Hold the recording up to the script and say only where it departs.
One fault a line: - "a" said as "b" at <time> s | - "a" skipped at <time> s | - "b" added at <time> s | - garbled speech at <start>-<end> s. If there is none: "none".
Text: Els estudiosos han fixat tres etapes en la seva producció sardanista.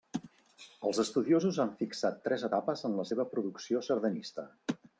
none